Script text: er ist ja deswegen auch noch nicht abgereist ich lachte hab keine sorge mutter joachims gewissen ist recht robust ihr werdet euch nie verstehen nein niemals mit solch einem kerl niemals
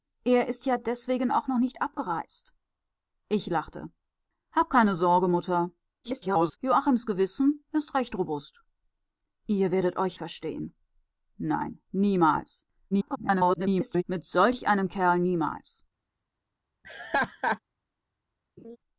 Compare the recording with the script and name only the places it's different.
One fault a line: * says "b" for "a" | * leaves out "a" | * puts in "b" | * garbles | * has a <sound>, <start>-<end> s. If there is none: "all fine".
* garbles
* leaves out "nie"
* garbles
* has a laugh, 16.8-17.6 s
* has a laugh, 18.6-18.8 s